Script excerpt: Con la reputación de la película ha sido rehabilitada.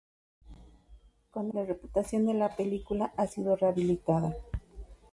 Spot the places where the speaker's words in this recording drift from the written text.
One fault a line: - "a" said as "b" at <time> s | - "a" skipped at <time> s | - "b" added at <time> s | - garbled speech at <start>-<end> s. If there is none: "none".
none